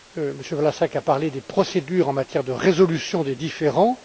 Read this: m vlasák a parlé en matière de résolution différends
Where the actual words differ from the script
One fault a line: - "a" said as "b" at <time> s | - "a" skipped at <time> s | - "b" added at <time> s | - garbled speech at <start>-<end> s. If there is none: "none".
- "des procédures" added at 1.3 s
- "des" added at 3.2 s